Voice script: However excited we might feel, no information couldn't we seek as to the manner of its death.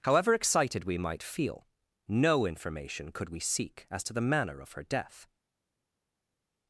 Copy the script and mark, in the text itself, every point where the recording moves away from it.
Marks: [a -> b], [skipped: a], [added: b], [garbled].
However excited we might feel, no information [couldn't -> could] we seek as to the manner of [its -> her] death.